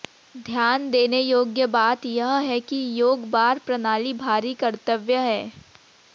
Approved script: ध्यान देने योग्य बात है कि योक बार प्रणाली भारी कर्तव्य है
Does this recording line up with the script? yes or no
no